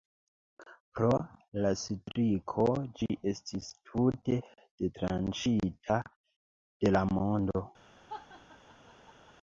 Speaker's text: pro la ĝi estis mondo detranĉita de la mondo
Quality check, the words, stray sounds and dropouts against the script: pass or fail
fail